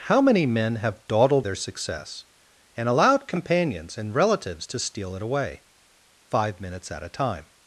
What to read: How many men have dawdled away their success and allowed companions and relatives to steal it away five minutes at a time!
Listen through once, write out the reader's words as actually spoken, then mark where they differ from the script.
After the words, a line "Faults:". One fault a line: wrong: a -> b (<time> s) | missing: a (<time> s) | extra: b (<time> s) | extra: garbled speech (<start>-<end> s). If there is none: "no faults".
How many men have dawdled their success and allowed companions and relatives to steal it away five minutes at a time!
Faults:
missing: away (1.4 s)